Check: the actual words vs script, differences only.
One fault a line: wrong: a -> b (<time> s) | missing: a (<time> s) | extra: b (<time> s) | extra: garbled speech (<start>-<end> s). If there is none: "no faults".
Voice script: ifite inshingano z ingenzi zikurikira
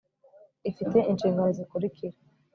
missing: ingenzi (1.6 s)